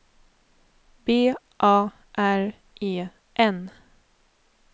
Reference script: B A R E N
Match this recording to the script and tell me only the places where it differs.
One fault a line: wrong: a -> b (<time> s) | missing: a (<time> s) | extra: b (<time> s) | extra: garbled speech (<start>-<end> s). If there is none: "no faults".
no faults